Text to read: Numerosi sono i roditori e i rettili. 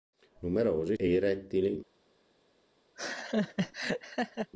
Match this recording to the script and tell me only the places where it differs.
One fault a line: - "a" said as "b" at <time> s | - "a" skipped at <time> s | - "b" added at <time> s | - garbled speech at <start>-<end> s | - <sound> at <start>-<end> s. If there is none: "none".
- "sono i roditori" skipped at 0.9 s
- laugh at 3.0-4.5 s